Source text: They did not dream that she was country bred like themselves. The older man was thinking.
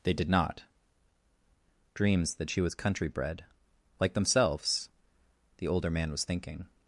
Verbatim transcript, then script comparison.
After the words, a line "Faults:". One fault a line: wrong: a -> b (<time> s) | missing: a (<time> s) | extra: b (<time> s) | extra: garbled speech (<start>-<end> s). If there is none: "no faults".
They did not dreams that she was country bred like themselves. The older man was thinking.
Faults:
wrong: dream -> dreams (1.9 s)